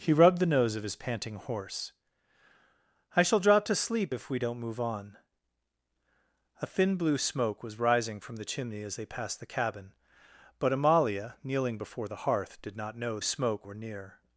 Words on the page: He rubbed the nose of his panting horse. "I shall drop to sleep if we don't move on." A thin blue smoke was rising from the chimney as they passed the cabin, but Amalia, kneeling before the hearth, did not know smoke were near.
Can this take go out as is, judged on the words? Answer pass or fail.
pass